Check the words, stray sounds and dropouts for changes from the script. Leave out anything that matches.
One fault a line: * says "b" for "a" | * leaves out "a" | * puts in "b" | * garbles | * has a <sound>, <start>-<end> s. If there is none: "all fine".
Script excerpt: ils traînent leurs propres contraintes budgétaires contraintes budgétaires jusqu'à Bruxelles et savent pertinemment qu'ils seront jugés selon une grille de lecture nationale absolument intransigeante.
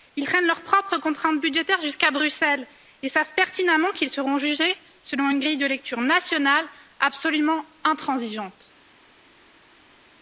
* leaves out "contraintes budgétaires"